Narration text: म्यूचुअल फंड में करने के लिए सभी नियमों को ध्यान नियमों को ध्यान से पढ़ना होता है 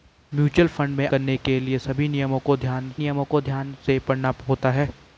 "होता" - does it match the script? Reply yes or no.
yes